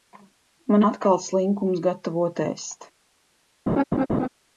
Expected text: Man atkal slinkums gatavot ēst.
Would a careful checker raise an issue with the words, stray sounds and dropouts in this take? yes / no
yes